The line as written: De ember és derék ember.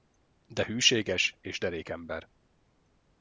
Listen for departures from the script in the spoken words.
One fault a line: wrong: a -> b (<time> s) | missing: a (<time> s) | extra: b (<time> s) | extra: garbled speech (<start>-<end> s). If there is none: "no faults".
wrong: ember -> hűséges (0.7 s)